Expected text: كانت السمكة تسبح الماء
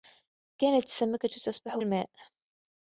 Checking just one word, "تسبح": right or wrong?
right